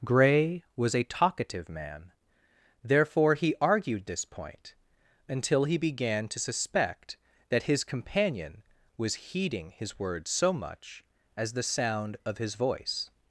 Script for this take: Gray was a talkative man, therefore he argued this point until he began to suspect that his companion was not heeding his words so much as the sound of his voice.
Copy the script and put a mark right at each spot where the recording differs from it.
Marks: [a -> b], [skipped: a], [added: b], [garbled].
Gray was a talkative man, therefore he argued this point until he began to suspect that his companion was [skipped: not] heeding his words so much as the sound of his voice.